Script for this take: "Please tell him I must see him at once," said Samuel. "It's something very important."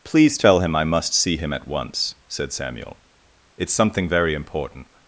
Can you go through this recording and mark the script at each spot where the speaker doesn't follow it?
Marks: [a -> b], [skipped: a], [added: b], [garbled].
"Please tell him I must see him at once," said Samuel. "It's something very important."